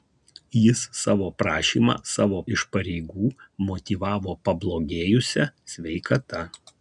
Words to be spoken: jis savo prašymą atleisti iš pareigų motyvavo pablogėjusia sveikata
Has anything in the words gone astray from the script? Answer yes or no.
yes